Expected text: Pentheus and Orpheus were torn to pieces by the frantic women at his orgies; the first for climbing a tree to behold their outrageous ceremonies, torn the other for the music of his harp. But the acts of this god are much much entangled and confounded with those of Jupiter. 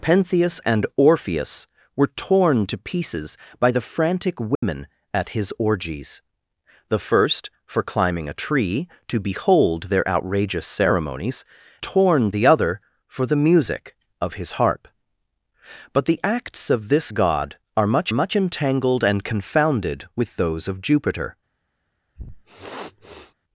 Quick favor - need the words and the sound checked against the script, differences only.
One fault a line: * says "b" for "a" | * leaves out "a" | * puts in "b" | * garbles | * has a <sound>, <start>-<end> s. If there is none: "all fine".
* has a dropout, 4.5-4.6 s
* has a sniff, 22.2-23.3 s